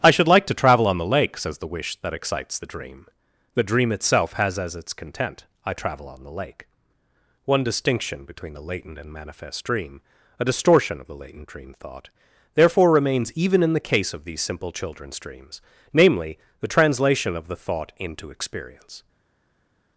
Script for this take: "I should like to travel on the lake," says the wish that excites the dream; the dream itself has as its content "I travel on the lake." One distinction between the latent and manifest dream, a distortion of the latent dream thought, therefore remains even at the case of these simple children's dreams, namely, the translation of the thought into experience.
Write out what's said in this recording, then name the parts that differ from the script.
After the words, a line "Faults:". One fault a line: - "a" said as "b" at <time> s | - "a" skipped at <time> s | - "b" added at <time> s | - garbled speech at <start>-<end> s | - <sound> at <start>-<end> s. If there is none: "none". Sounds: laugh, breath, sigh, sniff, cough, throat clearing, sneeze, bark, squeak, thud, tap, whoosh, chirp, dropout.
"I should like to travel on the lake," says the wish that excites the dream; the dream itself has as its content "I travel on the lake." One distinction between the latent and manifest dream, a distortion of the latent dream thought, therefore remains even in the case of these simple children's dreams, namely, the translation of the thought into experience.
Faults:
- "at" said as "in" at 13.6 s